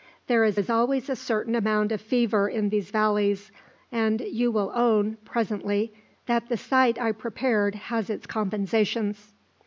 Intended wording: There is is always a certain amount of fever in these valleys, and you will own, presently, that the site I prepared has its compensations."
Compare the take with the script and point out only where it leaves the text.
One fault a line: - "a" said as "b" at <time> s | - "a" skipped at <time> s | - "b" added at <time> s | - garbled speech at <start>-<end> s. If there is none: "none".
none